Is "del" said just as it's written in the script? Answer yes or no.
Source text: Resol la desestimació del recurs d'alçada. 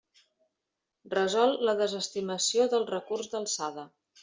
yes